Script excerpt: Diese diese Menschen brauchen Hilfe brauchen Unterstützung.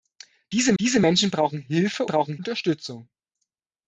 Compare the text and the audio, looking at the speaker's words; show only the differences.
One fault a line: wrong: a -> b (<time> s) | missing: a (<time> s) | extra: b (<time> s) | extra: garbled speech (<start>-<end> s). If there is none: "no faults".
no faults